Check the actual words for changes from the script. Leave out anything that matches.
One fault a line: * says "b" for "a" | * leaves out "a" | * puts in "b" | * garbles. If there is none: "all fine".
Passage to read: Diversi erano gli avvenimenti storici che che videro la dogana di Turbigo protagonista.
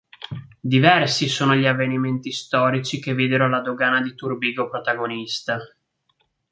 * says "sono" for "erano"
* leaves out "che"